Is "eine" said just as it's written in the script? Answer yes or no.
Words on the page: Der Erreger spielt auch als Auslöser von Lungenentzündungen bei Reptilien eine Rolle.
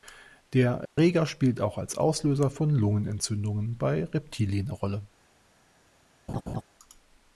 no